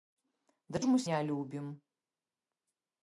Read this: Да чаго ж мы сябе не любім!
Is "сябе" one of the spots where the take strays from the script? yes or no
yes